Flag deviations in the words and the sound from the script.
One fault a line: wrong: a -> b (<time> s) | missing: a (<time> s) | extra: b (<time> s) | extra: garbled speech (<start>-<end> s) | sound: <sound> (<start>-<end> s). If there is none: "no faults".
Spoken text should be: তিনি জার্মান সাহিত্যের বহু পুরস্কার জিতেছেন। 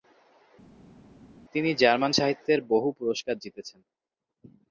no faults